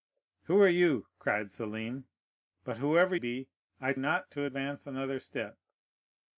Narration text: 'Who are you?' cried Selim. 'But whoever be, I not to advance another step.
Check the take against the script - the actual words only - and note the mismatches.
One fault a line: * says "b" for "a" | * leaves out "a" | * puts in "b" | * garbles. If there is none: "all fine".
all fine